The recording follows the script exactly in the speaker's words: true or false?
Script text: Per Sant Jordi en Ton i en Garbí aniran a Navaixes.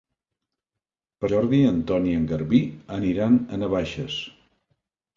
false